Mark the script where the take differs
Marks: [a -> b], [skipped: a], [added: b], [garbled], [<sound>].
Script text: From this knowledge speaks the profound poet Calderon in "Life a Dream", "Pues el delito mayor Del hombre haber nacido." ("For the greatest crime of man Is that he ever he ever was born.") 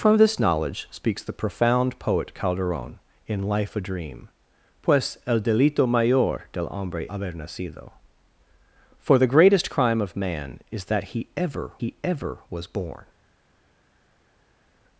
From this knowledge speaks the profound poet Calderon in "Life a Dream", "Pues el delito mayor Del hombre haber nacido." ("For the greatest crime of man Is that he ever he ever was born.")